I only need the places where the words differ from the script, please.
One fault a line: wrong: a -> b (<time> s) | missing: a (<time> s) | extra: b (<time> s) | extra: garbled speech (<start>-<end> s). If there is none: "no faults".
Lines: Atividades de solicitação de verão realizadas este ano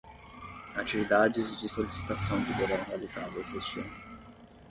no faults